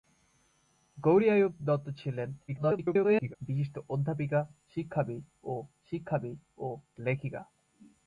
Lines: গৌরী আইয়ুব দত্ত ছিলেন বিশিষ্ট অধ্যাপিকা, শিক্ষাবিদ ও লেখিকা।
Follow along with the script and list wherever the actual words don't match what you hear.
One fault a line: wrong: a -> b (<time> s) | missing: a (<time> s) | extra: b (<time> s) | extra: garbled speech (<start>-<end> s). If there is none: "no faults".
extra: garbled speech (2.5-3.4 s)
extra: শিক্ষাবিদ ও (5.9 s)